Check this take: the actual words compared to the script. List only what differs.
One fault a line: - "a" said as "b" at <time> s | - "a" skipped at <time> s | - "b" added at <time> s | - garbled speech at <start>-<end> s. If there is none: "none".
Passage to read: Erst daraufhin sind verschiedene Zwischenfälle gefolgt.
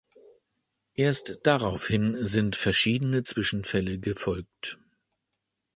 none